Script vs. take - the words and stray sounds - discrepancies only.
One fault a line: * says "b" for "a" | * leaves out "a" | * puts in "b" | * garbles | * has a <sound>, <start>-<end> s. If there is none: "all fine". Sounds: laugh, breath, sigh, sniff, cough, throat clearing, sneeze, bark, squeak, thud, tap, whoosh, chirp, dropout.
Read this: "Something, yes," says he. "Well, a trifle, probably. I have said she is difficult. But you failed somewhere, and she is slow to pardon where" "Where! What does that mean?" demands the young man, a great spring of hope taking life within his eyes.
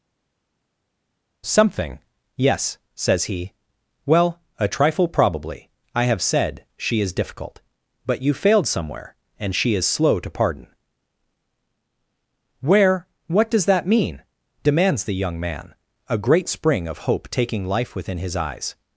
* leaves out "Where"